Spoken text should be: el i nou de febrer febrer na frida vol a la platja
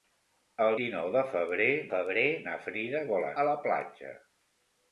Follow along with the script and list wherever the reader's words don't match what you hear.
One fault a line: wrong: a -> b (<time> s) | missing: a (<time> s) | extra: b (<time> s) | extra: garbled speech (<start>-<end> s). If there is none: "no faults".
no faults